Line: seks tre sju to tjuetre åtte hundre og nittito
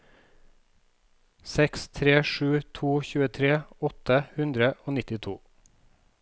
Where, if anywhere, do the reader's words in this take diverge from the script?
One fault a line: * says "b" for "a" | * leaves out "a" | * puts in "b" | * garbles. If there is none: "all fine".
all fine